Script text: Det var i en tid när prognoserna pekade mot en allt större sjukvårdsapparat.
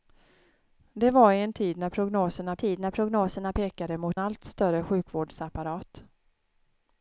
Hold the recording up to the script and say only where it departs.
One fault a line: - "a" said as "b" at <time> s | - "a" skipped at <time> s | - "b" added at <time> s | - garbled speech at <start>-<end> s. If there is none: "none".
- "tid när prognoserna" added at 2.6 s
- "en" skipped at 4.2 s